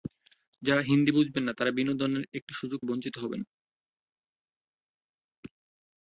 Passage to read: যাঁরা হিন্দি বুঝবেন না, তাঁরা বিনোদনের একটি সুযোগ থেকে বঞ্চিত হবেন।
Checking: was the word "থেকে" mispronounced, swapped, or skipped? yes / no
yes